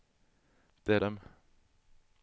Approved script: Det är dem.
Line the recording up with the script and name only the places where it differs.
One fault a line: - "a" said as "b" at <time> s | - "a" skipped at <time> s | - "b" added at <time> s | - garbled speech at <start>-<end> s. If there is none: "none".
none